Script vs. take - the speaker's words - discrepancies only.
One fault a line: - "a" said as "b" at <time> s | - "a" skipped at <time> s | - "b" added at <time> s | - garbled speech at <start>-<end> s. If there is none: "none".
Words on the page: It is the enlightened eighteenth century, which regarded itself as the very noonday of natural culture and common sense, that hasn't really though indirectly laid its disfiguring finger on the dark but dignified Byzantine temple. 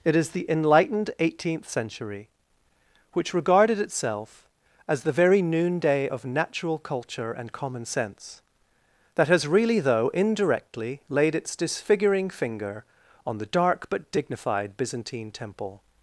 - "hasn't" said as "has" at 9.3 s